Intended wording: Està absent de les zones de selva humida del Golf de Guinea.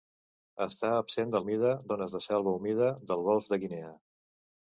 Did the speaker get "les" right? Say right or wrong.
wrong